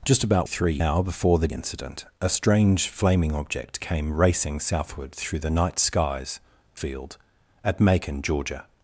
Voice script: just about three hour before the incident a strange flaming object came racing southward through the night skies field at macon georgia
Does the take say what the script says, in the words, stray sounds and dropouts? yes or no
yes